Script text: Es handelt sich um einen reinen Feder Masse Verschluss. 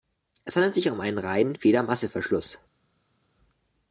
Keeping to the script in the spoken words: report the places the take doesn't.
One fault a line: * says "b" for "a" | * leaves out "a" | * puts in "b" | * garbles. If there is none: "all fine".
all fine